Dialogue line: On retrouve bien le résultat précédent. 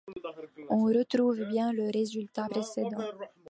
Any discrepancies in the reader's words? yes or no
no